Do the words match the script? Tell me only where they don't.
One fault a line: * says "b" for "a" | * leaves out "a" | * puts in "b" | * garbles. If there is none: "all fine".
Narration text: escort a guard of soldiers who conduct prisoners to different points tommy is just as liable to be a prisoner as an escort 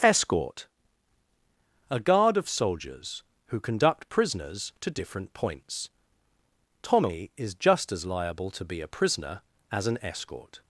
all fine